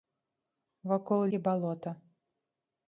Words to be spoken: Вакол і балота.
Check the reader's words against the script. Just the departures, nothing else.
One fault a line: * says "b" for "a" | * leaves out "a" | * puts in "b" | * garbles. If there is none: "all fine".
all fine